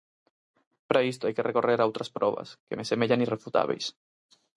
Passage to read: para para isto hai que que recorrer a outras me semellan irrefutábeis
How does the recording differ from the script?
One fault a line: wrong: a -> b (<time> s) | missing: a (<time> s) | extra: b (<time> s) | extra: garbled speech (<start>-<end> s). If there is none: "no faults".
missing: para (1.1 s)
missing: que (1.5 s)
extra: probas que (2.2 s)